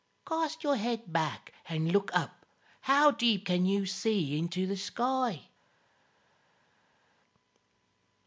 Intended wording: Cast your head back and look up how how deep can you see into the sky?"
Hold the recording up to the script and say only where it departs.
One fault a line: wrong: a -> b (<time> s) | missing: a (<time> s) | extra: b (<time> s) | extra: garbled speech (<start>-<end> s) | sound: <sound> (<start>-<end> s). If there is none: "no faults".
missing: how (3.1 s)